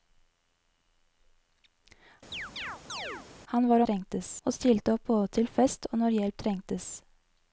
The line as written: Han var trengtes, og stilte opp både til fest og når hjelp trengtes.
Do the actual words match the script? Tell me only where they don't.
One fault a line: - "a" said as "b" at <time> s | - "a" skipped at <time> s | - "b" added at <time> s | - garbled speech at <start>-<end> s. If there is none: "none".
none